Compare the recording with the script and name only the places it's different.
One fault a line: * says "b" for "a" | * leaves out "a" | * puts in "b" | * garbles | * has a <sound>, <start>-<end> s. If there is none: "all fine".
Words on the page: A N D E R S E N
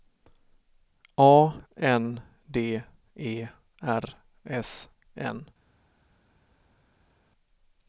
* leaves out "E"